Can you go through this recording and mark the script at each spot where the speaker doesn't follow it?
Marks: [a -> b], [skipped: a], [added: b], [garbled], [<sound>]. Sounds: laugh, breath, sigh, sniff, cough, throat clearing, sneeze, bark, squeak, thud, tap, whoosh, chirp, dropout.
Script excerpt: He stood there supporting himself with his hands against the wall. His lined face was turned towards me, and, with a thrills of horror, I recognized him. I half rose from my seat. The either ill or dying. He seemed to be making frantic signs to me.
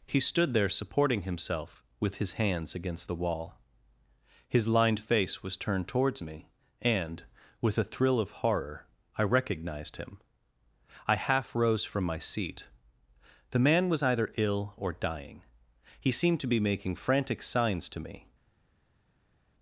He stood there supporting himself with his hands against the wall. His lined face was turned towards me, and, with a [thrills -> thrill] of horror, I recognized him. I half rose from my seat. The [added: man was] either ill or dying. He seemed to be making frantic signs to me.